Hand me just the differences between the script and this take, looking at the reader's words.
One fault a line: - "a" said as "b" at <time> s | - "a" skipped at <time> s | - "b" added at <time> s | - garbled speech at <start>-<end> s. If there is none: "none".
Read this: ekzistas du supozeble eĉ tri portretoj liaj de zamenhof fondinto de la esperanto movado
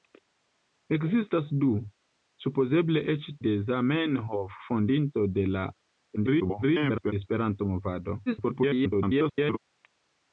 - "tri portretoj liaj" skipped at 3.3 s
- garbled speech at 6.2-7.1 s
- garbled speech at 8.3-9.6 s